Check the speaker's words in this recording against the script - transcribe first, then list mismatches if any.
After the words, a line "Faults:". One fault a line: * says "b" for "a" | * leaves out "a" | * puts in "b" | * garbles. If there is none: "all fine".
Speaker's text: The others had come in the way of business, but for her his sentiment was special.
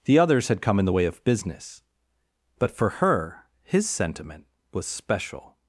The others had come in the way of business, but for her his sentiment was special.
Faults:
all fine